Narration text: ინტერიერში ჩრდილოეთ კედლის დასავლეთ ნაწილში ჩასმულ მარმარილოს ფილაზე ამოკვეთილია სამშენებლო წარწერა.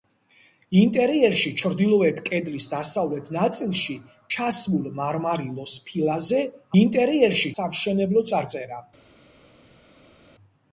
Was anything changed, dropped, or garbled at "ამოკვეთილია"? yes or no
yes